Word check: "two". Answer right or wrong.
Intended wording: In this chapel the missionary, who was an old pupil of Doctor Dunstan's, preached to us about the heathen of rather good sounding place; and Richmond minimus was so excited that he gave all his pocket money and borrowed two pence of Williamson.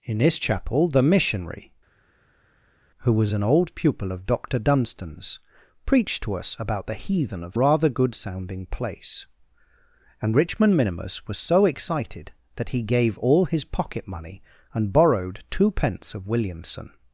right